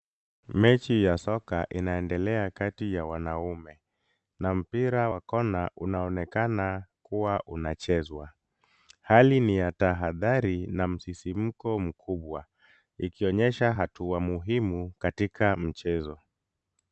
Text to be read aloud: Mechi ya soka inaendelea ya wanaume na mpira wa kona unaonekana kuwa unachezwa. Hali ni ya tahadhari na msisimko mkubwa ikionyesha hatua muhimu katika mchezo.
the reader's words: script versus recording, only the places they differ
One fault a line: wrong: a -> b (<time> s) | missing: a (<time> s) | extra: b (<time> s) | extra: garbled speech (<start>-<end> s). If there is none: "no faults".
extra: kati (2.5 s)